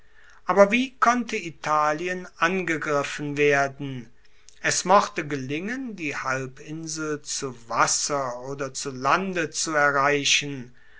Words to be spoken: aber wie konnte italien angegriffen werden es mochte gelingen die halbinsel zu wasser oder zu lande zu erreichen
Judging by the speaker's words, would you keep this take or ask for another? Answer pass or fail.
pass